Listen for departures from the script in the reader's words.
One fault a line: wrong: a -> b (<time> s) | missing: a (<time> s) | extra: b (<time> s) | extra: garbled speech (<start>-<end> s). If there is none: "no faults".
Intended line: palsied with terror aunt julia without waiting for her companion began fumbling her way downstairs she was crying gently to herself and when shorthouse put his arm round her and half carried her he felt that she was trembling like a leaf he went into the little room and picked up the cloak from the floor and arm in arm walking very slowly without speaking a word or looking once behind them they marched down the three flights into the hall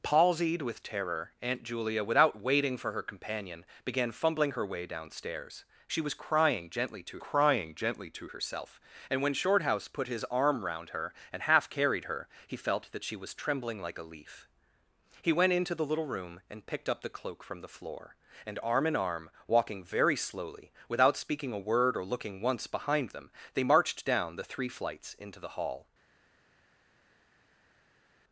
extra: crying gently to (7.2 s)